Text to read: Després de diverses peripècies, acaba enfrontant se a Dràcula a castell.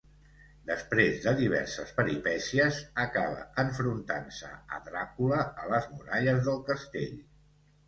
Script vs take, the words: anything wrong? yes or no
yes